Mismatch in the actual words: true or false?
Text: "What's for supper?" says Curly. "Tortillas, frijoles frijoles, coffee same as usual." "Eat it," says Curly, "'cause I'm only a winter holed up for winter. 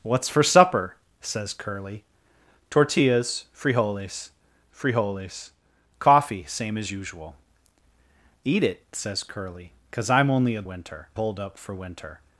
false